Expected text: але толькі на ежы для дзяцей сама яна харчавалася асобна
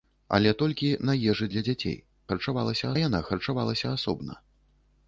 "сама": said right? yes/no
no